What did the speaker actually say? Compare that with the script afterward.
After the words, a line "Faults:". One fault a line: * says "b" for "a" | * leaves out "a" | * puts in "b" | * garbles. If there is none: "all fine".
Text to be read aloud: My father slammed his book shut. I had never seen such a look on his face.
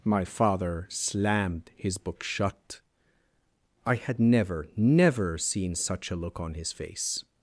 My father slammed his book shut. I had never never seen such a look on his face.
Faults:
* puts in "never"